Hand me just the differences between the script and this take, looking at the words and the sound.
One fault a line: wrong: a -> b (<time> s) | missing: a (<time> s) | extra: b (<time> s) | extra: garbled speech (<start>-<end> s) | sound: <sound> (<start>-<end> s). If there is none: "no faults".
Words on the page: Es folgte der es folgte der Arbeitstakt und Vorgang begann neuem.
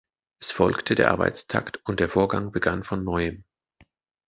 wrong: es folgte -> Arbeitstakt und (1.1 s)
missing: Arbeitstakt und (2.1 s)
extra: von (2.8 s)